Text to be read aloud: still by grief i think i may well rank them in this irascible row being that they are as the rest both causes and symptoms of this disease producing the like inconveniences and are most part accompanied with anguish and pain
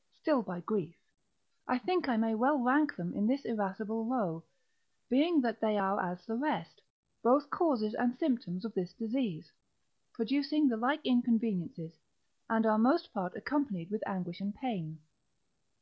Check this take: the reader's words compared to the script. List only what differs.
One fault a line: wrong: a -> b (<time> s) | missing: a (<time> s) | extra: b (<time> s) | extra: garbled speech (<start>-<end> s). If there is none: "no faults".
no faults